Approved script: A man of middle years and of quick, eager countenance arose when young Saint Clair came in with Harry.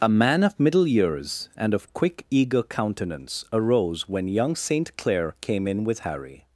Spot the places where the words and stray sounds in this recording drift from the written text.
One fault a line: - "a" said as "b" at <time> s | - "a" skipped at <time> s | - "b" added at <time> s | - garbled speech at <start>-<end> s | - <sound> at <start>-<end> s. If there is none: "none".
none